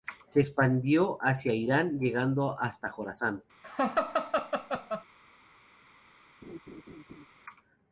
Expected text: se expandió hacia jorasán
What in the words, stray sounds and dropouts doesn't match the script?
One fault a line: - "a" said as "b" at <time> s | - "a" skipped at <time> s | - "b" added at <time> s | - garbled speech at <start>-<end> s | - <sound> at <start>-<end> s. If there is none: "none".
- "irán llegando hasta" added at 1.5 s
- laugh at 3.6-5.0 s
- laugh at 6.4-7.3 s